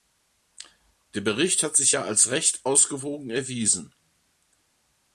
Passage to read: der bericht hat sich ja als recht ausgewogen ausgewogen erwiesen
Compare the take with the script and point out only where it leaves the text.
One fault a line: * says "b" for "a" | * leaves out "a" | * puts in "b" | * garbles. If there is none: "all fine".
* leaves out "ausgewogen"